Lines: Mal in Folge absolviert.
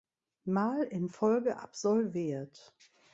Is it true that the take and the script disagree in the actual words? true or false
false